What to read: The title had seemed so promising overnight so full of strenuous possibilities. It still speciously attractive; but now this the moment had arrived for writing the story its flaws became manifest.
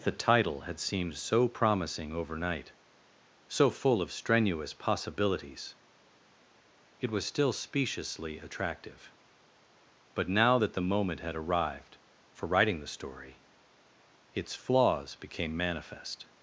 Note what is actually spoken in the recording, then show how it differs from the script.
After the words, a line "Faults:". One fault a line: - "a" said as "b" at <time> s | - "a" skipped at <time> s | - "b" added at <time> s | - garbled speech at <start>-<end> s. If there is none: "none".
The title had seemed so promising overnight so full of strenuous possibilities. It was still speciously attractive; but now that the moment had arrived for writing the story its flaws became manifest.
Faults:
- "was" added at 7.1 s
- "this" said as "that" at 10.5 s